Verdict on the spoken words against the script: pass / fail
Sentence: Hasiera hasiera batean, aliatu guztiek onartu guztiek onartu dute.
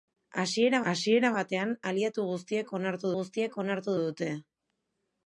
pass